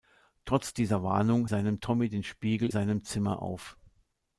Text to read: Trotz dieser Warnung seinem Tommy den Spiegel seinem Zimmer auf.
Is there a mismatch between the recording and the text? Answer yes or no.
no